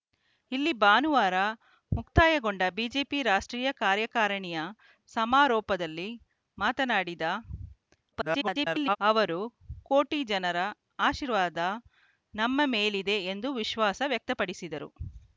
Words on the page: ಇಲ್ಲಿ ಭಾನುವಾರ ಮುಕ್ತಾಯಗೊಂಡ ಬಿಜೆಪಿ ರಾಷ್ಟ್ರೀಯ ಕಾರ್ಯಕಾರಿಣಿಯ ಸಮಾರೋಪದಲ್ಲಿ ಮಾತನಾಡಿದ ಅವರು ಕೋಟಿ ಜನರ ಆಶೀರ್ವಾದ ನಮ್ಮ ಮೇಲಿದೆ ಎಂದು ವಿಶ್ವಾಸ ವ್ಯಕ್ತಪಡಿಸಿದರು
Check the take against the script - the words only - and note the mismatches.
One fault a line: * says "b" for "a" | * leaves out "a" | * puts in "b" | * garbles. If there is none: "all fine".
* garbles